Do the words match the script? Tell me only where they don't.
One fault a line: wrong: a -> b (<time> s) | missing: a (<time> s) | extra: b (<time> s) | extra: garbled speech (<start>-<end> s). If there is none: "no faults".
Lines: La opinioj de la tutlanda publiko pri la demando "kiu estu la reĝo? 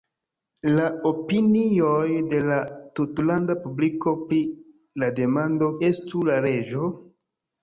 missing: kiu (5.7 s)